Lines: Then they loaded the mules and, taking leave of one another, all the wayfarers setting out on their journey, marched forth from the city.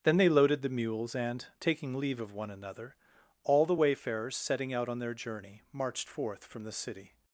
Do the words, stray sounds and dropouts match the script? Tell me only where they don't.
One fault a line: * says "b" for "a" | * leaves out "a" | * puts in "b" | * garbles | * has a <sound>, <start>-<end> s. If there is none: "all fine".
all fine